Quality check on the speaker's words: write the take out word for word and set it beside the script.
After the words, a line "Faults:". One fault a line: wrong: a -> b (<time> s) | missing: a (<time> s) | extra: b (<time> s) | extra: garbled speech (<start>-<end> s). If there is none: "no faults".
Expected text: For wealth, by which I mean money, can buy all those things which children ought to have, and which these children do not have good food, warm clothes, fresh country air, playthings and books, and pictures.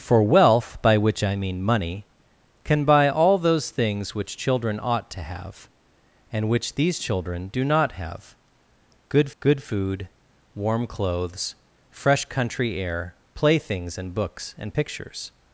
For wealth, by which I mean money, can buy all those things which children ought to have, and which these children do not have good good food, warm clothes, fresh country air, playthings and books, and pictures.
Faults:
extra: good (9.4 s)